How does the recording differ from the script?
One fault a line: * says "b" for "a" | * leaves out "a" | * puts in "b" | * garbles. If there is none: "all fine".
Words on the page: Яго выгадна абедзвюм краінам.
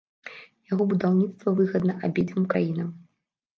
* puts in "будаўніцтва"